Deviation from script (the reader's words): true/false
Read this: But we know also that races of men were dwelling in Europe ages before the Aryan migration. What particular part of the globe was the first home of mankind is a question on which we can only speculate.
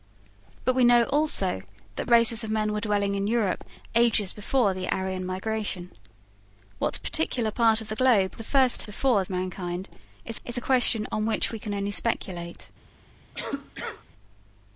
true